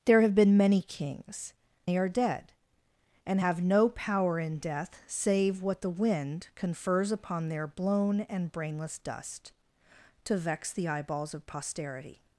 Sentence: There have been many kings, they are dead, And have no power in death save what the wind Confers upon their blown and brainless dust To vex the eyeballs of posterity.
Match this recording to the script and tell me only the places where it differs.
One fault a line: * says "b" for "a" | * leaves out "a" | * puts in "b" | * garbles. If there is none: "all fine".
all fine